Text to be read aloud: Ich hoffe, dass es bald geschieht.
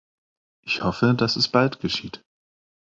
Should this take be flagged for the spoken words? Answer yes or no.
no